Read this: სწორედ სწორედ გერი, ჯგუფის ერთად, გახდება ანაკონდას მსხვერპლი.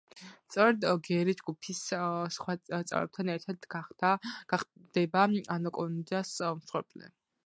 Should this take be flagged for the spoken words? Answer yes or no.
yes